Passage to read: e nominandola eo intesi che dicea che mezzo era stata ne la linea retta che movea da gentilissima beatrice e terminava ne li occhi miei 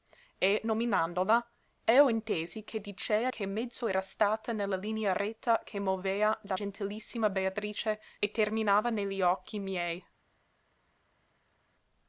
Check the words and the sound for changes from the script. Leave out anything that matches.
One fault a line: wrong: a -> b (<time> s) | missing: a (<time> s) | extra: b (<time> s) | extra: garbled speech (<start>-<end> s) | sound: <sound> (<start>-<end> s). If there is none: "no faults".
no faults